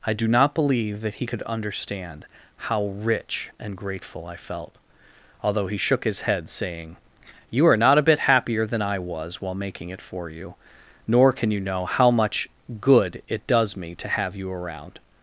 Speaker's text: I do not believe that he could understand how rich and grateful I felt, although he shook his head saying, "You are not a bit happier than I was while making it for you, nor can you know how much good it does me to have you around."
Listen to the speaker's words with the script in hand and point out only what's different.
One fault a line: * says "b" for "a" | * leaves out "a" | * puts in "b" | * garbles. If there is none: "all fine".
all fine